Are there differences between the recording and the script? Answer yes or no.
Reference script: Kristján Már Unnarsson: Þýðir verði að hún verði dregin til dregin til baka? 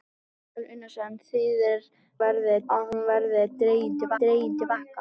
no